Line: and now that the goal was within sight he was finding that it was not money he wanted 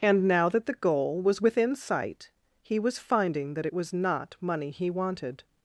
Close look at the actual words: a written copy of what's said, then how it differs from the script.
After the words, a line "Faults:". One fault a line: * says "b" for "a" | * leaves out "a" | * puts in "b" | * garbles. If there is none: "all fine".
and now that the goal was within sight he was finding that it was not money he wanted
Faults:
all fine